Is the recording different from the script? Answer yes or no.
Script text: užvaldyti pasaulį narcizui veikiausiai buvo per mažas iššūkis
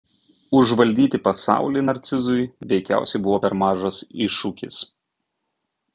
no